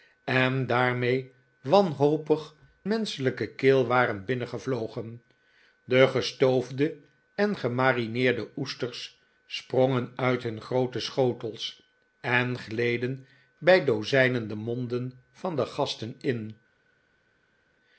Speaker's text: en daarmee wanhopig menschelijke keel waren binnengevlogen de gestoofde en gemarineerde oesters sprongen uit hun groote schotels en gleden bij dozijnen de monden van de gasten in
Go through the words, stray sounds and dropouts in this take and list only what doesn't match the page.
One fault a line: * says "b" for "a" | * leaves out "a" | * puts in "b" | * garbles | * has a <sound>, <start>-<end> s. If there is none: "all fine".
all fine